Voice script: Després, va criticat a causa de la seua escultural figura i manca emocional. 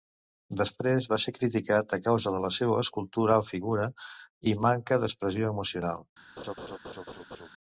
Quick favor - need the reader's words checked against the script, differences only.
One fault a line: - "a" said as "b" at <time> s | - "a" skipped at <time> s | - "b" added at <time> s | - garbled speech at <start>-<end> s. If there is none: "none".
- "ser" added at 1.2 s
- "d'expressió" added at 5.0 s